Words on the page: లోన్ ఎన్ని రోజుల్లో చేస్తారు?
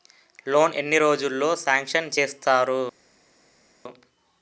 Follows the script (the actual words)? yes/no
no